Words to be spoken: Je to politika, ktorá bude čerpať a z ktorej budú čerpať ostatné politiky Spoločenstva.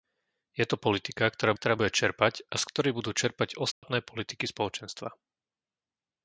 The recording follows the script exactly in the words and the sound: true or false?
false